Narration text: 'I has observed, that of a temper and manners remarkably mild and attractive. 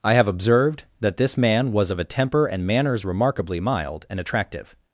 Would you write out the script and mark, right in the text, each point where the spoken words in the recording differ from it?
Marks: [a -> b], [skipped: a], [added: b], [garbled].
'I [has -> have] observed, that [added: this man was] of a temper and manners remarkably mild and attractive.